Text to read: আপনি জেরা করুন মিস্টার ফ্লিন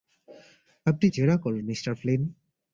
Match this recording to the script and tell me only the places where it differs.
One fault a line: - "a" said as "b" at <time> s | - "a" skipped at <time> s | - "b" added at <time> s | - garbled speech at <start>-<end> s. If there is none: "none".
none